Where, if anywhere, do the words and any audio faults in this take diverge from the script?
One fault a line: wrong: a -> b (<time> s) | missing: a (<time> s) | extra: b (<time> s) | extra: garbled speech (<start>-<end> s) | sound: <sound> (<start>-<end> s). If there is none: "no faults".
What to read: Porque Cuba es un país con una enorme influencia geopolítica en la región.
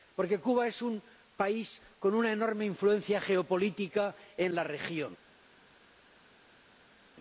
no faults